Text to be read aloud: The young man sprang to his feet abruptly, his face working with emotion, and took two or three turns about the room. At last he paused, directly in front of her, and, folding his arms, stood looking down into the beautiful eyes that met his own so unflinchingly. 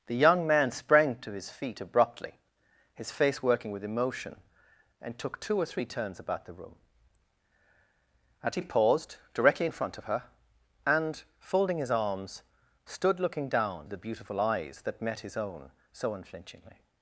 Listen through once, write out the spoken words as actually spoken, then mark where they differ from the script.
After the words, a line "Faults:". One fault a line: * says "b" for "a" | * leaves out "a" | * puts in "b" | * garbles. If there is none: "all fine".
The young man sprang to his feet abruptly, his face working with emotion, and took two or three turns about the room. At he paused, directly in front of her, and, folding his arms, stood looking down the beautiful eyes that met his own so unflinchingly.
Faults:
* leaves out "last"
* leaves out "into"